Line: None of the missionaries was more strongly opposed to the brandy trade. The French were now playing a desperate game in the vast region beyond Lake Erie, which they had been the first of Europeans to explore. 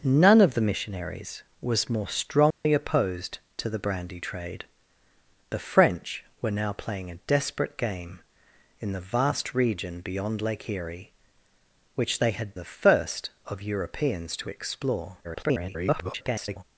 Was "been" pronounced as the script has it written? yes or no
no